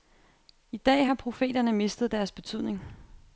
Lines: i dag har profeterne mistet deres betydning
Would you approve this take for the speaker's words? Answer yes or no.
yes